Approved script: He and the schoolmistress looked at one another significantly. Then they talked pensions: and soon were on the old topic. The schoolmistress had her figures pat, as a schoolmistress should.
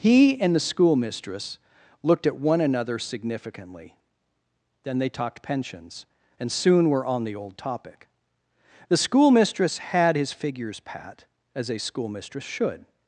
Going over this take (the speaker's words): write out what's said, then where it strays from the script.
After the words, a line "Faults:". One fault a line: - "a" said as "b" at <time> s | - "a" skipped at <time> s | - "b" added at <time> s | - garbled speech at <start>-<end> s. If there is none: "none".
He and the schoolmistress looked at one another significantly. Then they talked pensions: and soon were on the old topic. The schoolmistress had his figures pat, as a schoolmistress should.
Faults:
- "her" said as "his" at 10.1 s